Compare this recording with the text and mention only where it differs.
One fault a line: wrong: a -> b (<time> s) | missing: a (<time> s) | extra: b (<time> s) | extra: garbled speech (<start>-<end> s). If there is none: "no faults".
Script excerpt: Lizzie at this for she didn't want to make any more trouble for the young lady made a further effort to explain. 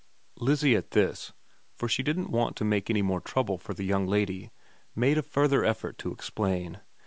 no faults